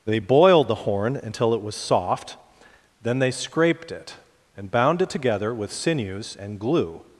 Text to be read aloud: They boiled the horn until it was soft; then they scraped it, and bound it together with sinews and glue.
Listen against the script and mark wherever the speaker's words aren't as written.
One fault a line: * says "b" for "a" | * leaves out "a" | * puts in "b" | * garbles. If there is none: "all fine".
all fine